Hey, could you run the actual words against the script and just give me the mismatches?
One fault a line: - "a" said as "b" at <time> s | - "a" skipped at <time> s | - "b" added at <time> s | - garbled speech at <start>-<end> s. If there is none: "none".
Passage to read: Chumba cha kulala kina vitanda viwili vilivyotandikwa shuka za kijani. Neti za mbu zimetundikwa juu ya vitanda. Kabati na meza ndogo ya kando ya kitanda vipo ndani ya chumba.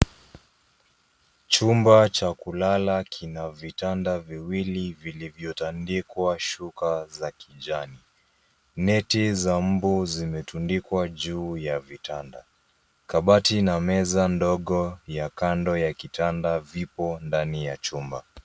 none